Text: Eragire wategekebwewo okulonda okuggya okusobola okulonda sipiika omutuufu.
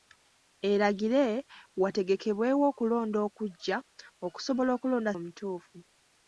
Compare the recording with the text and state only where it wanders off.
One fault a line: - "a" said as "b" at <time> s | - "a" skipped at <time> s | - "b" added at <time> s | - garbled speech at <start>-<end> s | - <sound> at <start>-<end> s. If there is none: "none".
- "sipiika" skipped at 5.1 s